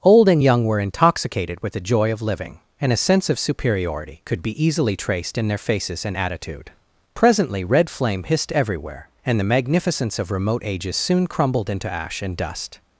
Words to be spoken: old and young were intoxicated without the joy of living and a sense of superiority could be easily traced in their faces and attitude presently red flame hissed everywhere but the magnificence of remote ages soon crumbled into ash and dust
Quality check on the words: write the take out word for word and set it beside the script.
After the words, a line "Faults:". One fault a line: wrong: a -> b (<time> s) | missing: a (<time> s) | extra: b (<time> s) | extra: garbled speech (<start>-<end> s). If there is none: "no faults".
old and young were intoxicated with the joy of living and a sense of superiority could be easily traced in their faces and attitude presently red flame hissed everywhere and the magnificence of remote ages soon crumbled into ash and dust
Faults:
wrong: without -> with (1.6 s)
wrong: but -> and (9.3 s)